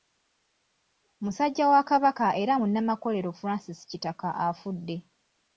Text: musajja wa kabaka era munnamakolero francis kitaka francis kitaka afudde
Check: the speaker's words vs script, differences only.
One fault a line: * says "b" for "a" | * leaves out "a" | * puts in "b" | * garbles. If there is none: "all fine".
* leaves out "francis kitaka"